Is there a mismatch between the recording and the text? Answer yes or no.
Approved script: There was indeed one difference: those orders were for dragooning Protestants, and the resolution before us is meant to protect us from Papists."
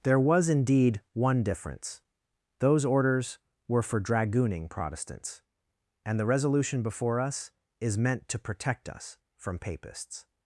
no